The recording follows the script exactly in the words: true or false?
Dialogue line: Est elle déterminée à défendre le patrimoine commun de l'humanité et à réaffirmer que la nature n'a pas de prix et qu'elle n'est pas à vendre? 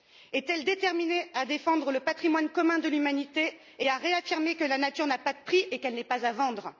true